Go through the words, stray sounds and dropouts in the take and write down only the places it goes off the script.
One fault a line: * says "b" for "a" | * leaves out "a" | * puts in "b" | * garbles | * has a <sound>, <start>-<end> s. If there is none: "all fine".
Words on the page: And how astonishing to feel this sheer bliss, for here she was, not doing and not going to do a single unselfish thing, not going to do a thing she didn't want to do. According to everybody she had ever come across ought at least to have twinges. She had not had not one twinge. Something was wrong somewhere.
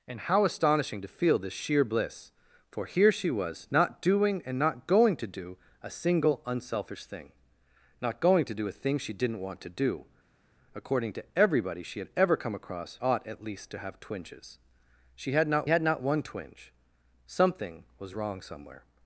all fine